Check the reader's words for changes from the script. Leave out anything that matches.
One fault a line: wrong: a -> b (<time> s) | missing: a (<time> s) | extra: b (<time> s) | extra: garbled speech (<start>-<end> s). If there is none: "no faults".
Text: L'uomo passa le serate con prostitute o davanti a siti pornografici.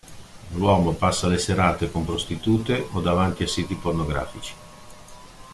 no faults